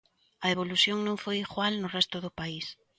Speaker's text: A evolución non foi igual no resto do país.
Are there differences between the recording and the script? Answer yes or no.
no